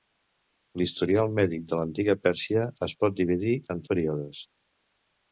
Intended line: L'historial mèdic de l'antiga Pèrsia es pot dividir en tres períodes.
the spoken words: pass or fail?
fail